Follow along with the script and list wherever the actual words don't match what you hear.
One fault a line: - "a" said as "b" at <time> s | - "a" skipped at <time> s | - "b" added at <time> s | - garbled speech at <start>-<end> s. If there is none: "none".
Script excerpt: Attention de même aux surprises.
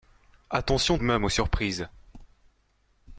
none